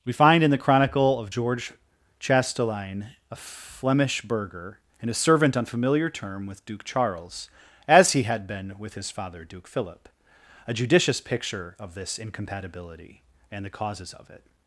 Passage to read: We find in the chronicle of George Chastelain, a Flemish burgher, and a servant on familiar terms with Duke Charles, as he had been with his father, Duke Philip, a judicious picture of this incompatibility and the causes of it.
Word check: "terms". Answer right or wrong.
wrong